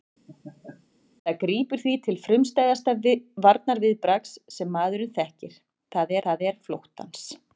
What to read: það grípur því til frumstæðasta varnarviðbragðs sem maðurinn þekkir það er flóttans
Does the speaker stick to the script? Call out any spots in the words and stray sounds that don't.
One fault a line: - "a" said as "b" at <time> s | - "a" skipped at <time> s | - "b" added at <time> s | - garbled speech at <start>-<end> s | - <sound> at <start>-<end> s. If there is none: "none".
- laugh at 0.3-0.9 s
- "það" added at 6.3 s